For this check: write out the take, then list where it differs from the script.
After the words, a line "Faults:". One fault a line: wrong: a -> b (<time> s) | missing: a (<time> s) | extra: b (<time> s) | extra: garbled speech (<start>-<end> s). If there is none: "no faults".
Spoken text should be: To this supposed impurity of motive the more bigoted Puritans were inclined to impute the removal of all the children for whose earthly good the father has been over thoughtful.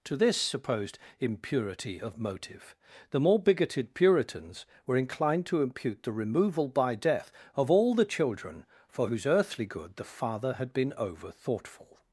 To this supposed impurity of motive the more bigoted Puritans were inclined to impute the removal by death of all the children for whose earthly good the father had been over thoughtful.
Faults:
extra: by death (6.7 s)
wrong: has -> had (10.5 s)